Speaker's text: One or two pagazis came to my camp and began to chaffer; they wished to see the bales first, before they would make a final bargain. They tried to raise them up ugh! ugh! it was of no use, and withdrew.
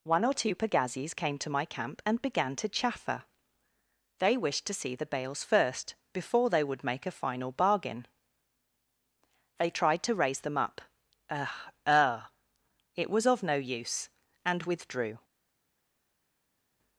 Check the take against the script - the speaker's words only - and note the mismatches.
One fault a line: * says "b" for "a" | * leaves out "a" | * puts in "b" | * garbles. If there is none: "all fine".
all fine